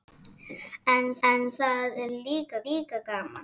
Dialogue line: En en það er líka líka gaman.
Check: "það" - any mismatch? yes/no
no